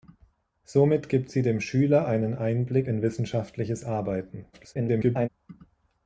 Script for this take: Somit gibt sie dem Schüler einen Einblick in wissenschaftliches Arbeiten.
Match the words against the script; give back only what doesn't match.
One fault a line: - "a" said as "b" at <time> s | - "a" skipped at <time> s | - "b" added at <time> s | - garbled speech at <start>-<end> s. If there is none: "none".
- garbled speech at 4.5-5.3 s